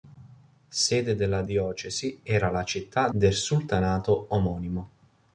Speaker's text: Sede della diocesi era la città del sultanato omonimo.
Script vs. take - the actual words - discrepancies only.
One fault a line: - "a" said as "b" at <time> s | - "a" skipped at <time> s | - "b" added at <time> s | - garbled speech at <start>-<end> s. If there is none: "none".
none